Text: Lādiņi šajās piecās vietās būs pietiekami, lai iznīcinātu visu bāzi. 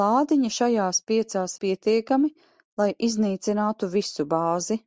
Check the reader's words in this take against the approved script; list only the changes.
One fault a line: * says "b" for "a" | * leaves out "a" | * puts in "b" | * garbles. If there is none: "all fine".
* leaves out "vietās būs"